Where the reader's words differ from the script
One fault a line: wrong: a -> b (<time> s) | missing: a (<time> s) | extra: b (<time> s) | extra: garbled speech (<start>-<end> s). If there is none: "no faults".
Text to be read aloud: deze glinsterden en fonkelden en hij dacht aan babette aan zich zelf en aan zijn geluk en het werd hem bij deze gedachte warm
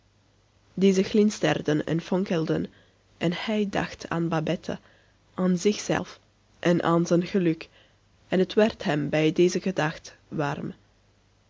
no faults